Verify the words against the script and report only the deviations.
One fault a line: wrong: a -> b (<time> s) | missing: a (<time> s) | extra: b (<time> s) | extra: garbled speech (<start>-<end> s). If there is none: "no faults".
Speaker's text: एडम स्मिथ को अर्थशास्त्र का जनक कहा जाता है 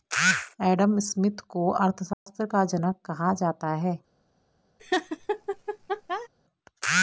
no faults